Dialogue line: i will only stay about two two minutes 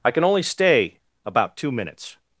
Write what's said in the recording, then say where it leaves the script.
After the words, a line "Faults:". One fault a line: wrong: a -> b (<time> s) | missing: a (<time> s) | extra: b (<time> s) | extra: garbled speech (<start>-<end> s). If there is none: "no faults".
i can only stay about two minutes
Faults:
wrong: will -> can (0.1 s)
missing: two (1.7 s)